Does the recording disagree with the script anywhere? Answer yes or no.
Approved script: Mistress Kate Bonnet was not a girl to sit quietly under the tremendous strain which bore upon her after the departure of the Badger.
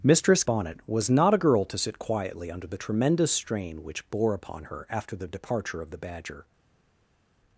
yes